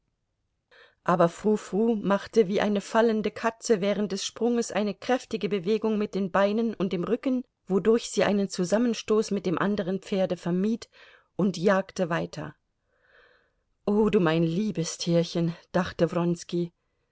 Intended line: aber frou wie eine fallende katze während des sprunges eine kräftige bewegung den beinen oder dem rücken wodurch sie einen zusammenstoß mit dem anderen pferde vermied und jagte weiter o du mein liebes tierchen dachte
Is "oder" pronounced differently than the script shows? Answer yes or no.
yes